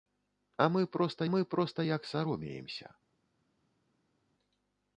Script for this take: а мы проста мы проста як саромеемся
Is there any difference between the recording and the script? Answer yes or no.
no